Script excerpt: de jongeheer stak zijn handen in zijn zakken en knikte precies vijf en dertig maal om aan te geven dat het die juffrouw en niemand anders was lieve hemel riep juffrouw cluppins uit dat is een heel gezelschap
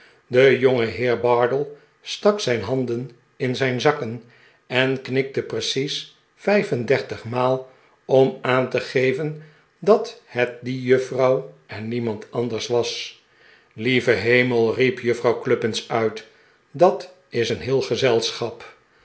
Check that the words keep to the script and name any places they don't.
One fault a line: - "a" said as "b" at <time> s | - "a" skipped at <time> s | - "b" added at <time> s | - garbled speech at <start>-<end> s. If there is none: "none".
- "bardell" added at 1.2 s